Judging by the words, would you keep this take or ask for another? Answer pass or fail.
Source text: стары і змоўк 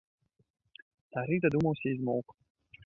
fail